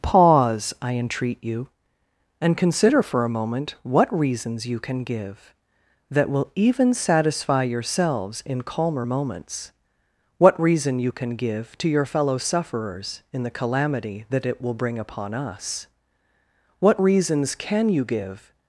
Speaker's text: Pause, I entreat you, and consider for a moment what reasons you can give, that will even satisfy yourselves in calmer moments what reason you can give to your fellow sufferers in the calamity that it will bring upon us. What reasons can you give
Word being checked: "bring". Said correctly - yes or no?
yes